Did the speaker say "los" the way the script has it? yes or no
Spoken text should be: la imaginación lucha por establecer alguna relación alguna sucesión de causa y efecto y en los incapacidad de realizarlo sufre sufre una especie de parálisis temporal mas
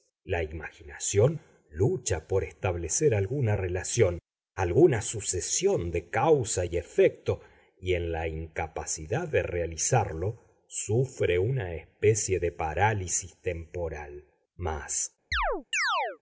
no